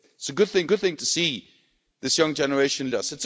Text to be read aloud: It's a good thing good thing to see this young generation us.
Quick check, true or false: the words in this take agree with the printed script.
true